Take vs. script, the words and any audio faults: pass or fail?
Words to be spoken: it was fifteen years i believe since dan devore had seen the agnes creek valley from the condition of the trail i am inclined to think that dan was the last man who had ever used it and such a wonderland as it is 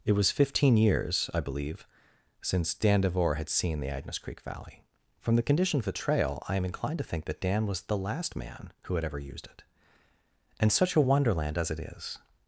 pass